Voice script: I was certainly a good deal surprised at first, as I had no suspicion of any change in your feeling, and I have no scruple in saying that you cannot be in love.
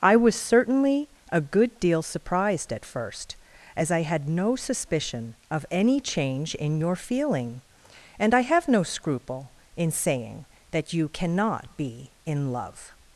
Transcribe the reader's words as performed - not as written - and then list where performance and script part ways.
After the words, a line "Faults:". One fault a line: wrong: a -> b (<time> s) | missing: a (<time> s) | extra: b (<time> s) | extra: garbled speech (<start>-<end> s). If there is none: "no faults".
I was certainly a good deal surprised at first, as I had no suspicion of any change in your feeling, and I have no scruple in saying that you cannot be in love.
Faults:
no faults